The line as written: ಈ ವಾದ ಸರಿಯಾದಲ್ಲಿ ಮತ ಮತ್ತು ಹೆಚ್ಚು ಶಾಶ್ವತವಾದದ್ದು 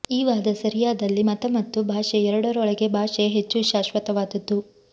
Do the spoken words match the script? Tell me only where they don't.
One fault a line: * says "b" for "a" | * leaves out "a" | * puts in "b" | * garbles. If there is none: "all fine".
* puts in "ಭಾಷೆ ಎರಡರೊಳಗೆ ಭಾಷೆ"